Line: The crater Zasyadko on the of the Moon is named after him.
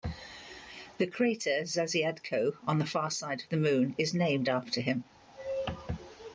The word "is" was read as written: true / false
true